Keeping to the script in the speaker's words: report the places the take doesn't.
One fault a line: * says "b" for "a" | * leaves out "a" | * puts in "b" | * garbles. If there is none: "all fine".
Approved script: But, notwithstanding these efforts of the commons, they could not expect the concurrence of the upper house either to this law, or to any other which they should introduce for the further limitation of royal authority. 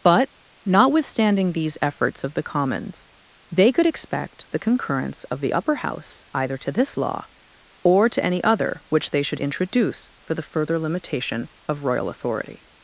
* leaves out "not"